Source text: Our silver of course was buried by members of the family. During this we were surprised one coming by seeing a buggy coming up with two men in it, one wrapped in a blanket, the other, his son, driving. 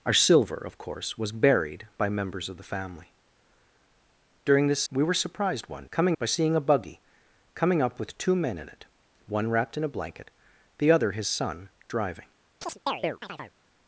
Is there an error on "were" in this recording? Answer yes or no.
no